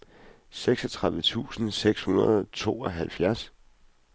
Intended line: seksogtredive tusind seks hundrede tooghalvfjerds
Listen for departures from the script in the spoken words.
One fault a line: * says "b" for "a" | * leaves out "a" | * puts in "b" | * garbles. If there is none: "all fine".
* puts in "og"